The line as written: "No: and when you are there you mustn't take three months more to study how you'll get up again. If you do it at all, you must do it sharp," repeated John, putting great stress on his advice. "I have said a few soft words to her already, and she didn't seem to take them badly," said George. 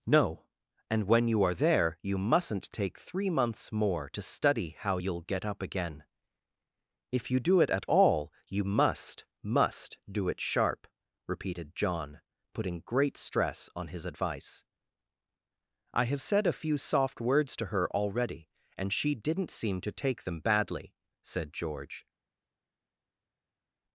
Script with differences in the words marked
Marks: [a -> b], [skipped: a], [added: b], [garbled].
"No: and when you are there you mustn't take three months more to study how you'll get up again. If you do it at all, you must [added: must] do it sharp," repeated John, putting great stress on his advice. "I have said a few soft words to her already, and she didn't seem to take them badly," said George.